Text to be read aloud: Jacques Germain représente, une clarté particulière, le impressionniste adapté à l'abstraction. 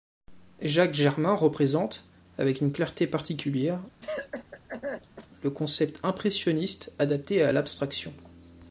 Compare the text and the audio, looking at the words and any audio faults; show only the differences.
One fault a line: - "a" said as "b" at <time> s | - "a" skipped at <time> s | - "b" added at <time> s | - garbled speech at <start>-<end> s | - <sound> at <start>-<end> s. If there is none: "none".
- "avec" added at 2.4 s
- cough at 4.0-5.3 s
- "concept" added at 5.5 s